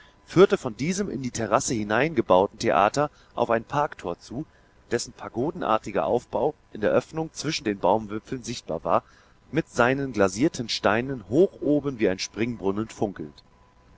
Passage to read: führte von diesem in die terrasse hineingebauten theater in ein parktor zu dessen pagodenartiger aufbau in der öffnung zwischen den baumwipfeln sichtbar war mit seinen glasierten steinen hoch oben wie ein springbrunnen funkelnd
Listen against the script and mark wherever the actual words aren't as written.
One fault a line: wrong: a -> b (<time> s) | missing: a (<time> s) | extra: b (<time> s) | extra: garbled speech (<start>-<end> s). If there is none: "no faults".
wrong: in -> auf (3.4 s)